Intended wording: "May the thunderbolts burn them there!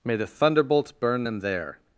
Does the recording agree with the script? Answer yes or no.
yes